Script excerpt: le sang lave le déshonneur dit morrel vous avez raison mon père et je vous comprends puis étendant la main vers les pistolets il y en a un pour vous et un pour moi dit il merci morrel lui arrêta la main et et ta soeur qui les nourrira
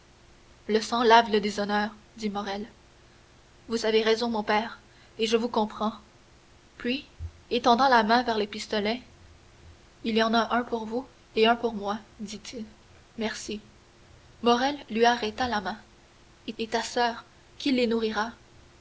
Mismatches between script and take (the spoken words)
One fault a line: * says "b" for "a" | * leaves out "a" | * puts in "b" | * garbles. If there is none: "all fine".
all fine